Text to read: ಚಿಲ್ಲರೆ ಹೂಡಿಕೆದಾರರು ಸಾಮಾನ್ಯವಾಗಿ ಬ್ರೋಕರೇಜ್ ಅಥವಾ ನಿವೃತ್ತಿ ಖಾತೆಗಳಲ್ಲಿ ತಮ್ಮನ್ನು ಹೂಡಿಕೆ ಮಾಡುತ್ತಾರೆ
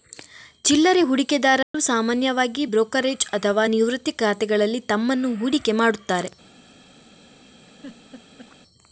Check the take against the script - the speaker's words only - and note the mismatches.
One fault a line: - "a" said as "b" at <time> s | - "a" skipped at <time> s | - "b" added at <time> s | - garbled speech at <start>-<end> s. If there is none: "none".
none